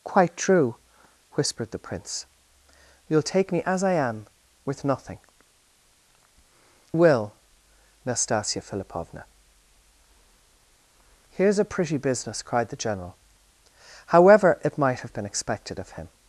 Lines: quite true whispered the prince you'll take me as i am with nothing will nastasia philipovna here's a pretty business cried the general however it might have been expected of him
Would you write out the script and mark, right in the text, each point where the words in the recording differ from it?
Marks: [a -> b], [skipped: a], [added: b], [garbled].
quite true whispered the prince you'll take me as i am with nothing will nastasia philipovna here's a pretty business cried the general however it might have been expected of him